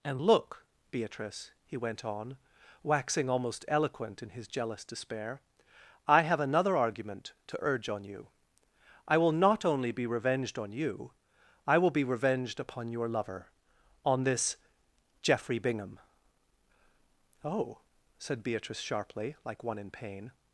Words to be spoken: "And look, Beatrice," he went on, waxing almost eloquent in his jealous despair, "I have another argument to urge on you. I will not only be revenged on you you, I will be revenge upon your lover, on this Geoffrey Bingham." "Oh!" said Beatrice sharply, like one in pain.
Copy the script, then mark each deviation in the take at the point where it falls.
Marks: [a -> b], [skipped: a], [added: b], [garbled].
"And look, Beatrice," he went on, waxing almost eloquent in his jealous despair, "I have another argument to urge on you. I will not only be revenged on you [skipped: you,] I will be [revenge -> revenged] upon your lover, on this Geoffrey Bingham." "Oh!" said Beatrice sharply, like one in pain.